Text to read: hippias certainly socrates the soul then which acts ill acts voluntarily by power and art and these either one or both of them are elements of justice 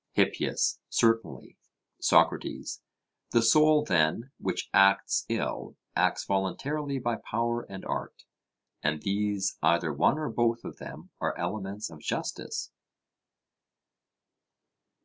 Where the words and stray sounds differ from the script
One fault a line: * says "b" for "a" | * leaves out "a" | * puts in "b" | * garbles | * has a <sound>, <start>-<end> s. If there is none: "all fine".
all fine